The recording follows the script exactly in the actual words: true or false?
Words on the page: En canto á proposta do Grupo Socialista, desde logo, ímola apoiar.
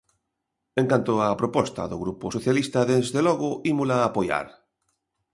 true